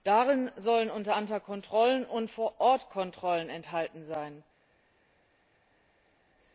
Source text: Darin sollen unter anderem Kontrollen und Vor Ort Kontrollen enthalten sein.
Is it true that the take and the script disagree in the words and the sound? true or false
false